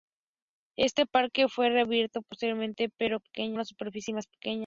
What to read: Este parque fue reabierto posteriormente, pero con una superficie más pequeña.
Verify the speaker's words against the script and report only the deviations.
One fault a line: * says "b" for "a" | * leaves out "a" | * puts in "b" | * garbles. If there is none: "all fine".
* says "pequeña" for "con"